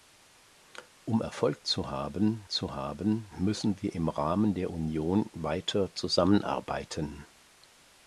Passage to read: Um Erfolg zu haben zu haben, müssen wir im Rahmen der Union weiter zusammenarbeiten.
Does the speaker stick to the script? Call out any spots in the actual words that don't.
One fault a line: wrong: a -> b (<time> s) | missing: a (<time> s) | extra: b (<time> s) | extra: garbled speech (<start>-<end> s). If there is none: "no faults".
no faults